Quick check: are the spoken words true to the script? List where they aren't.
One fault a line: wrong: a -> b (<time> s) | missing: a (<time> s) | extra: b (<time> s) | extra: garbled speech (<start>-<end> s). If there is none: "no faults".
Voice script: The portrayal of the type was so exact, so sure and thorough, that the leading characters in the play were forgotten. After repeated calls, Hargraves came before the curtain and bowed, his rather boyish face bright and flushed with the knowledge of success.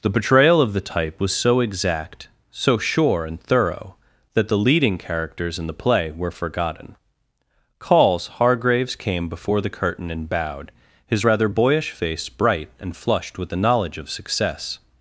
missing: After repeated (7.0 s)